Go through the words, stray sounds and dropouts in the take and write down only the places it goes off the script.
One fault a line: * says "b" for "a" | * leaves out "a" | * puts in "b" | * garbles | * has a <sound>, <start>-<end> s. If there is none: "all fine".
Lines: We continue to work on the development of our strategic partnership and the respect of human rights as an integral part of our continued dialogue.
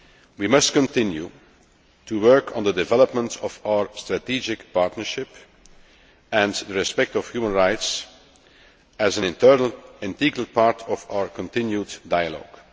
* puts in "must"